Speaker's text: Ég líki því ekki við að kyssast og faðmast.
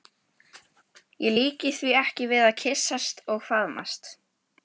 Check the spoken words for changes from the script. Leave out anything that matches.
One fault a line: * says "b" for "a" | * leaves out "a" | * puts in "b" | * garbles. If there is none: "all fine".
all fine